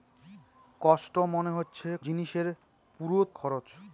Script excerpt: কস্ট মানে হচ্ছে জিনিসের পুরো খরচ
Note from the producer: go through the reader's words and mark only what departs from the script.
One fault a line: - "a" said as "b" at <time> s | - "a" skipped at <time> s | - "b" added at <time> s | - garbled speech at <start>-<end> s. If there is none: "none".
none